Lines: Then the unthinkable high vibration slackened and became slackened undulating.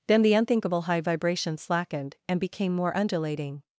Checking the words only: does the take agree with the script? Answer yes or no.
no